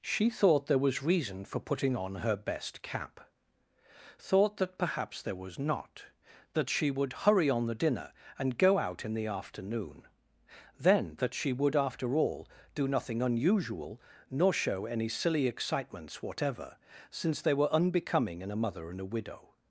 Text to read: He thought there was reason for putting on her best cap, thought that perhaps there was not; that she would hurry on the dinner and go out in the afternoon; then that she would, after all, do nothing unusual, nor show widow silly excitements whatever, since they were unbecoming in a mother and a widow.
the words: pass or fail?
fail